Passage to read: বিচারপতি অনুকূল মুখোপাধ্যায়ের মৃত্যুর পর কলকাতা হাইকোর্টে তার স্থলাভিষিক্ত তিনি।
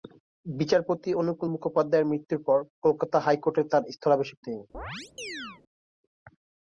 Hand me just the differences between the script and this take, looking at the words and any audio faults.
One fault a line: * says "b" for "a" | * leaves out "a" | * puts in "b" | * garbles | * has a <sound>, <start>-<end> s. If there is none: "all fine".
* has a chirp, 4.7-5.6 s